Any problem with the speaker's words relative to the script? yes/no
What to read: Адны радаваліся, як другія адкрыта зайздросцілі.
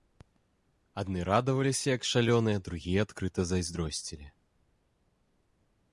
yes